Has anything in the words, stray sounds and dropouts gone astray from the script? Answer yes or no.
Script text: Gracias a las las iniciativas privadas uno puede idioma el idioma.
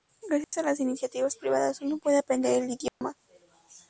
yes